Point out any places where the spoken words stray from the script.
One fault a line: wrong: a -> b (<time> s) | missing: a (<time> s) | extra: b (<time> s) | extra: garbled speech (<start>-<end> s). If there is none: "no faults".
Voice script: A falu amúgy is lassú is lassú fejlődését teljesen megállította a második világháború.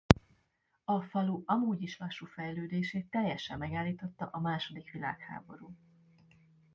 missing: is lassú (2.2 s)